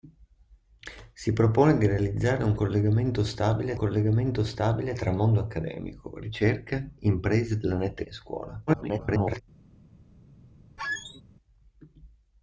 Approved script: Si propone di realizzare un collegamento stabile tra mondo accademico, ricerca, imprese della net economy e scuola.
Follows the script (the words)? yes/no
no